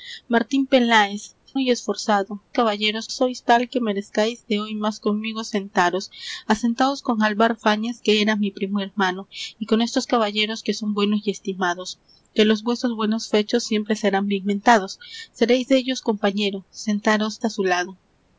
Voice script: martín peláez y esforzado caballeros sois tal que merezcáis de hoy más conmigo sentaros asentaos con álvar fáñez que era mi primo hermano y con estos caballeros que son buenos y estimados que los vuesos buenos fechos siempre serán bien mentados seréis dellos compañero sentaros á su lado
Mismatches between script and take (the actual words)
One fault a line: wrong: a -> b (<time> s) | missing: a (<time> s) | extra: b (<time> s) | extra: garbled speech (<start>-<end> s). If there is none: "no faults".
no faults